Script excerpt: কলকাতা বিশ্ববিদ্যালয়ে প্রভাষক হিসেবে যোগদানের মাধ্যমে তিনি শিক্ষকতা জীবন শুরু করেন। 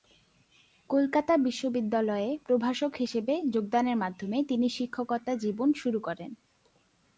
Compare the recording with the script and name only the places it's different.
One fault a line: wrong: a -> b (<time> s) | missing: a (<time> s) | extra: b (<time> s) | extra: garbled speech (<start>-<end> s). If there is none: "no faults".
no faults